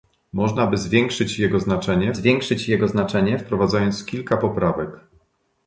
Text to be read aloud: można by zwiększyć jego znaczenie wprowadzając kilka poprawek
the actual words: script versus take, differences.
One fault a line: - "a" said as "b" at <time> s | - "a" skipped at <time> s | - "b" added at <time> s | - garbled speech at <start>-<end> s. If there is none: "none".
- "zwiększyć jego znaczenie" added at 2.1 s